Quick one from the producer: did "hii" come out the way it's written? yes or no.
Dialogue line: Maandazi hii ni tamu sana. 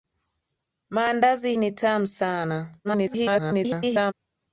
no